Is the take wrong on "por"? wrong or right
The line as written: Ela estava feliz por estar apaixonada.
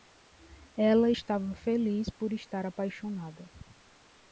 right